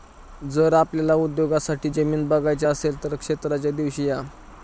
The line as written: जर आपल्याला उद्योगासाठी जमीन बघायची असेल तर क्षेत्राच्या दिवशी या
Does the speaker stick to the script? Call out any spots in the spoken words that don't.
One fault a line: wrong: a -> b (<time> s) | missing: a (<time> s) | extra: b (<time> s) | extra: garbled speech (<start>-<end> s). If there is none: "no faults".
no faults